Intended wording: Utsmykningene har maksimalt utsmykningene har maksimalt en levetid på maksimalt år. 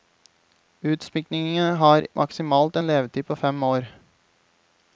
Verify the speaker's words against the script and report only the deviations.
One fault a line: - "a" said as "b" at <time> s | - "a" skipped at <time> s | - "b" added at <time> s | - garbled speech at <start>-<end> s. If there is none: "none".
- "utsmykningene har maksimalt" skipped at 2.8 s
- "maksimalt" said as "fem" at 3.3 s